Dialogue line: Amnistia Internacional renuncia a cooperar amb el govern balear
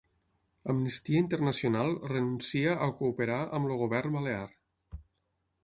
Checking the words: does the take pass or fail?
pass